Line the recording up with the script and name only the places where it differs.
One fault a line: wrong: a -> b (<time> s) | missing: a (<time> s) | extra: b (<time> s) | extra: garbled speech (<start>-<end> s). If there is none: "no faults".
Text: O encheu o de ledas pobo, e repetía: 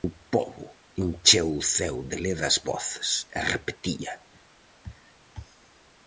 extra: pobo (0.3 s)
extra: ceo (1.8 s)
wrong: pobo -> voces (2.7 s)